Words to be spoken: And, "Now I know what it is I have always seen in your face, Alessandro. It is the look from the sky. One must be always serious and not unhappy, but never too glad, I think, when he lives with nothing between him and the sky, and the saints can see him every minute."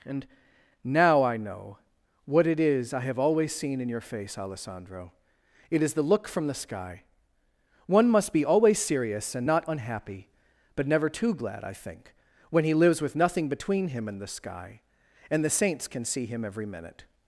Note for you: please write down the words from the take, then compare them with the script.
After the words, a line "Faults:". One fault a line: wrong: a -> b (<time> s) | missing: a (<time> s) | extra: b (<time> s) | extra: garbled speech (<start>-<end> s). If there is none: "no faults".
And, "Now I know what it is I have always seen in your face, Alessandro. It is the look from the sky. One must be always serious and not unhappy, but never too glad, I think, when he lives with nothing between him and the sky, and the saints can see him every minute."
Faults:
no faults